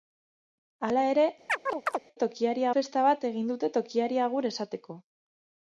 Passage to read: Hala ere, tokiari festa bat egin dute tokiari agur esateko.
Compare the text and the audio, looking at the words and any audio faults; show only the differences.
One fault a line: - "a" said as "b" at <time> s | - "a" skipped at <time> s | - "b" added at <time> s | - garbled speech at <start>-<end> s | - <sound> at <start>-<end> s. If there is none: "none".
- chirp at 1.5-2.0 s